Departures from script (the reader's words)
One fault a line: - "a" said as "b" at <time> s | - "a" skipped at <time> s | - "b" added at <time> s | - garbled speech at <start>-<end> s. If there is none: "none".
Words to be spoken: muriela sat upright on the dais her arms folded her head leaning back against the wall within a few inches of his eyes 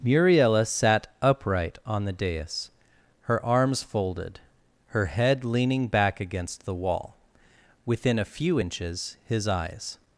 - "of" skipped at 9.2 s